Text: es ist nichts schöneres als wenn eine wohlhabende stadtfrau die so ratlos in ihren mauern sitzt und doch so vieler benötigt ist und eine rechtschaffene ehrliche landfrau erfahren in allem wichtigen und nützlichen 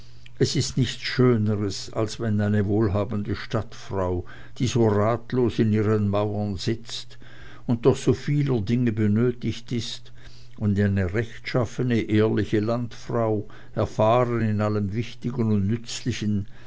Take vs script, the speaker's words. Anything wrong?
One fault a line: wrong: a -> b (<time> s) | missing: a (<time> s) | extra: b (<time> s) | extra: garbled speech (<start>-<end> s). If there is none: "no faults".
extra: dinge (8.6 s)